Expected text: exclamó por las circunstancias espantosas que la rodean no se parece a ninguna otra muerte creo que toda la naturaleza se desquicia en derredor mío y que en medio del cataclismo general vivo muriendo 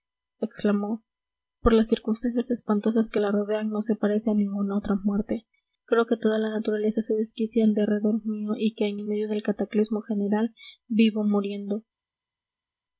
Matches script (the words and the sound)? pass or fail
fail